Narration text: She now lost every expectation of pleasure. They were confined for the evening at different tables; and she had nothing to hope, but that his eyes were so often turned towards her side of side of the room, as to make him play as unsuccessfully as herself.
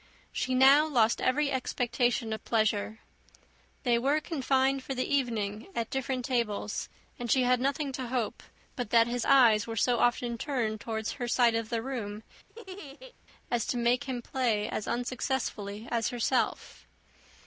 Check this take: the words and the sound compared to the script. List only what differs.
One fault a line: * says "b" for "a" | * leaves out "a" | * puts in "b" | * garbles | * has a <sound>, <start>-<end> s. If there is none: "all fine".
* leaves out "side of"
* has a laugh, 12.5-13.1 s